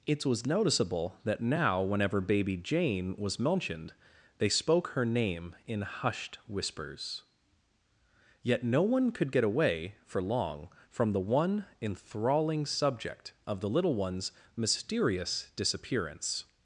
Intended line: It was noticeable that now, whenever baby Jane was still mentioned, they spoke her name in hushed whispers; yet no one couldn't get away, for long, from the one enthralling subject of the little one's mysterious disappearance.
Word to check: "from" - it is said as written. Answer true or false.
true